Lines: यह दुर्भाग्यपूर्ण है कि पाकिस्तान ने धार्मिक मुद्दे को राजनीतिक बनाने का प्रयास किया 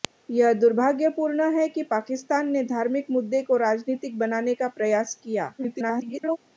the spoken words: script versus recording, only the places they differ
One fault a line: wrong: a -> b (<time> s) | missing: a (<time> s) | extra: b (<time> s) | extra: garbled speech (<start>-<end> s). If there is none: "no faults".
extra: garbled speech (5.6-6.4 s)